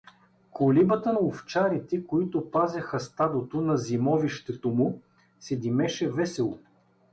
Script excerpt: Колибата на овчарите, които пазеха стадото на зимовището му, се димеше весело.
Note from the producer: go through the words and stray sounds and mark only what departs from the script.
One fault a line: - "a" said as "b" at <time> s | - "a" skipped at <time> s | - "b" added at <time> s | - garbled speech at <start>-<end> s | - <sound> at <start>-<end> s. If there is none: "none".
- "на" skipped at 1.1 s